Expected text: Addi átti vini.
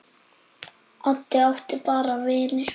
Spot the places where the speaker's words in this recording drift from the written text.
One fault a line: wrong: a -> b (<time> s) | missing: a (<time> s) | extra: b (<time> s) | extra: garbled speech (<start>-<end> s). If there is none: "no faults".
extra: bara (1.8 s)